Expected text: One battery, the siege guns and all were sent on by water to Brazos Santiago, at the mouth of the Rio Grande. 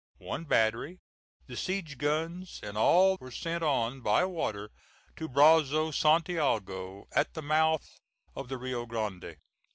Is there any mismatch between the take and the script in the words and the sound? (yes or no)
no